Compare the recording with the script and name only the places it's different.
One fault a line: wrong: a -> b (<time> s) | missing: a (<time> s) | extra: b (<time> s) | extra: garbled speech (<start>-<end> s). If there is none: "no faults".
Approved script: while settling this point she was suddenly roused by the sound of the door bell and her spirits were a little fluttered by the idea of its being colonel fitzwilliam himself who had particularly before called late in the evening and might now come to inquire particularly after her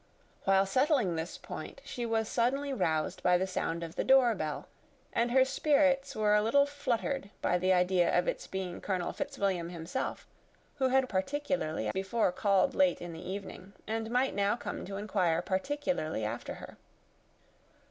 no faults